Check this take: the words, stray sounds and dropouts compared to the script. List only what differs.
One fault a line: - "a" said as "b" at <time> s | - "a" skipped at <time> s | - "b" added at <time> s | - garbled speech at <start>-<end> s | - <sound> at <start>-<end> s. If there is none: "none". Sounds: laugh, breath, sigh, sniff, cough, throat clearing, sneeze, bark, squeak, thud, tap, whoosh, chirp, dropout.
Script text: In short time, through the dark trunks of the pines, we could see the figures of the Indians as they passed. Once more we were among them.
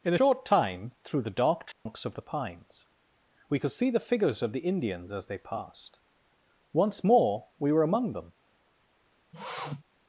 - dropout at 1.7-1.9 s
- sniff at 9.3-9.8 s